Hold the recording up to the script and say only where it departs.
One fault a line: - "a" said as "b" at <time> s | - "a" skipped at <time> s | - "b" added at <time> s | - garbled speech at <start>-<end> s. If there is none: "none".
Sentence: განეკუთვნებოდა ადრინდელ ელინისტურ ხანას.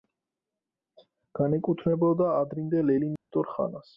none